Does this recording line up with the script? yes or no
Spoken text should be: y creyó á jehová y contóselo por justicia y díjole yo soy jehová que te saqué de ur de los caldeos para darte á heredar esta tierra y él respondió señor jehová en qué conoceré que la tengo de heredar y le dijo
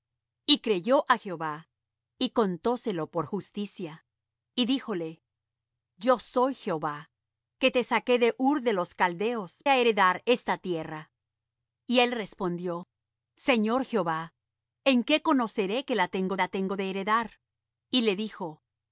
no